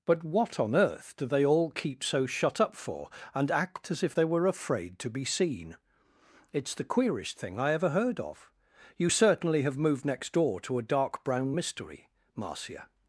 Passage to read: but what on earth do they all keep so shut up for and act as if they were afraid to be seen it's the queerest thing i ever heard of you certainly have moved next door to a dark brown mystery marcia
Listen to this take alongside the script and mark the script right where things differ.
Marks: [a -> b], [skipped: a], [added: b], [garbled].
but what on earth do they all keep so shut up for and act as if they were afraid to be seen it's the queerest thing i ever heard of you certainly have moved next door to a dark brown mystery marcia